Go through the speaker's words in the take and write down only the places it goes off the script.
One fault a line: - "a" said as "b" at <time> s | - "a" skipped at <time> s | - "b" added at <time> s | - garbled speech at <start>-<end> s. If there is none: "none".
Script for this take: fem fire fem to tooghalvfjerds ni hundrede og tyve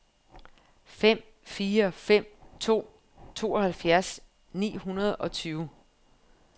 none